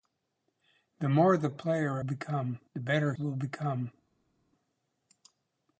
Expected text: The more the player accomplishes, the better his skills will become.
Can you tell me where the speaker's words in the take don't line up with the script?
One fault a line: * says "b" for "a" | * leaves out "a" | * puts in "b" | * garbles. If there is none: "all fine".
* says "become" for "accomplishes"
* leaves out "his skills"